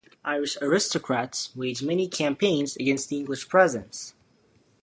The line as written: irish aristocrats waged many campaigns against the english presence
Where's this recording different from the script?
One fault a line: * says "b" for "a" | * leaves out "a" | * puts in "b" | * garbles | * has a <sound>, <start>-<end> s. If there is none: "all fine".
all fine